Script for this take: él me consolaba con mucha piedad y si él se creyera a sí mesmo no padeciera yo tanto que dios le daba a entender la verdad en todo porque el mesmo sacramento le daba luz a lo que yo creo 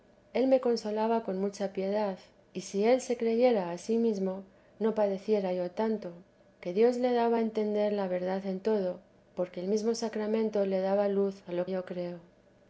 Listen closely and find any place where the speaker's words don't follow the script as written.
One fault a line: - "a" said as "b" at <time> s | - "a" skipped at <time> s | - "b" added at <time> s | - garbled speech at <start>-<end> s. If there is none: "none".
- "que" skipped at 11.7 s